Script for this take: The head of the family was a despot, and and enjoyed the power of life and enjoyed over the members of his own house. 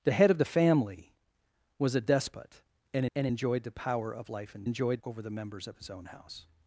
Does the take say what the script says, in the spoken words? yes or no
yes